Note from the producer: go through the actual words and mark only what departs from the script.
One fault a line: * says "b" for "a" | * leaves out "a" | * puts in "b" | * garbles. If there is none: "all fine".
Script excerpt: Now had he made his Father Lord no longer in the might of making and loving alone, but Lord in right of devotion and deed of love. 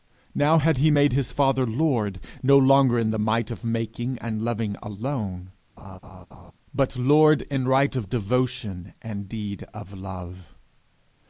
all fine